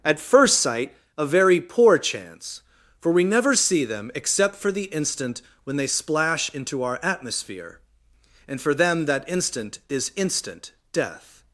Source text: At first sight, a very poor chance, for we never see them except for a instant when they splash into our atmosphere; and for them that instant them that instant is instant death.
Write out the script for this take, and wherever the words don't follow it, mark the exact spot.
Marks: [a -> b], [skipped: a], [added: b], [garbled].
At first sight, a very poor chance, for we never see them except for [a -> the] instant when they splash into our atmosphere; and for them that instant [skipped: them that instant] is instant death.